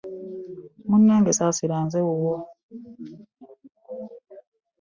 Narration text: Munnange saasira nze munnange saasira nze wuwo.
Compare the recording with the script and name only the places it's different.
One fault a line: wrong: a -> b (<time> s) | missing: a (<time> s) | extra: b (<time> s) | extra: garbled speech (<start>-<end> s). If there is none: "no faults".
missing: munnange saasira nze (2.0 s)